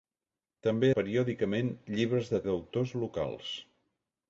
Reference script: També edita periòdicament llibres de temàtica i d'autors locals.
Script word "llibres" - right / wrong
right